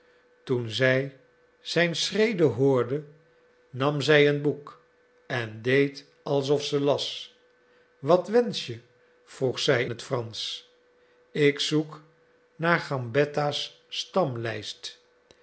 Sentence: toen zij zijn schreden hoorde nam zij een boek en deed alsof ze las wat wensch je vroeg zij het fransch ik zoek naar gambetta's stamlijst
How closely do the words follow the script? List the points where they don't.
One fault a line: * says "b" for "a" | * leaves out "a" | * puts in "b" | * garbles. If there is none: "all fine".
all fine